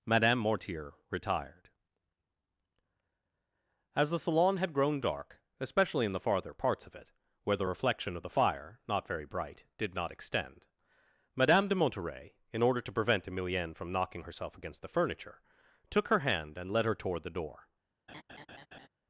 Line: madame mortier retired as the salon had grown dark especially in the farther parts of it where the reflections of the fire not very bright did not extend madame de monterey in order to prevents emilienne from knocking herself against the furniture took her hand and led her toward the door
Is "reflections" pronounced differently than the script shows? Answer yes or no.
yes